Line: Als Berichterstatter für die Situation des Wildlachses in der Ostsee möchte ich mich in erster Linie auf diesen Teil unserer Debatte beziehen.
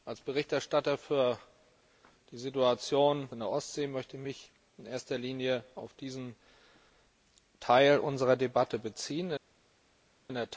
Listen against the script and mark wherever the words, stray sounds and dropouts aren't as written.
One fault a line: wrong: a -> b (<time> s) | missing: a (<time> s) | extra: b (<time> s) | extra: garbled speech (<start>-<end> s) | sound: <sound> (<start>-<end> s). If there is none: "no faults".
missing: des Wildlachses (3.3 s)